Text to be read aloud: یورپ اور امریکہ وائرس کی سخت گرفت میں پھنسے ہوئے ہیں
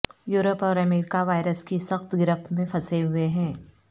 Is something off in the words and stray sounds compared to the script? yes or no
no